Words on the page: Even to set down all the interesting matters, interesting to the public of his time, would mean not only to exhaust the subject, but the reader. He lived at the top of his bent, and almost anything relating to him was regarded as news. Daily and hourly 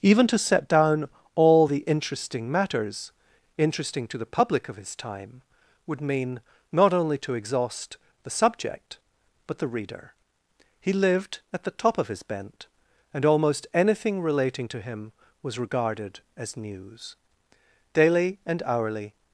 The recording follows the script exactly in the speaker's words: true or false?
true